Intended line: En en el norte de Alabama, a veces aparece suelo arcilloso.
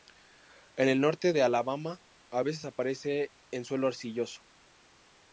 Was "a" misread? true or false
false